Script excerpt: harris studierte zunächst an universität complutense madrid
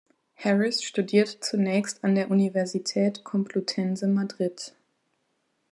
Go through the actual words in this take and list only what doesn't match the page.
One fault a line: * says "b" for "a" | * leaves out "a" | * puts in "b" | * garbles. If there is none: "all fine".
* puts in "der"